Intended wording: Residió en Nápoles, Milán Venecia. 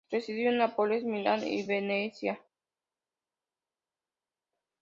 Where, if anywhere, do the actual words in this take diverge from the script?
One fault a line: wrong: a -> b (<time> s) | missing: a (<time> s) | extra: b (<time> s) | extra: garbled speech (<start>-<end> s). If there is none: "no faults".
extra: y (1.5 s)